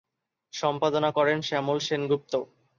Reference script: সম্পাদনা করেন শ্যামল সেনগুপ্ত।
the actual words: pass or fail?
pass